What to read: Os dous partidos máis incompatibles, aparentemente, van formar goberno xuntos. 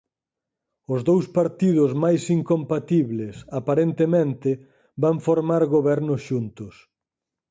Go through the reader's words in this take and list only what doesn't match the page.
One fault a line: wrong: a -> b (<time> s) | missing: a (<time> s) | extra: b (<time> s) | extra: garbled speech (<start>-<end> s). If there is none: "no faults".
no faults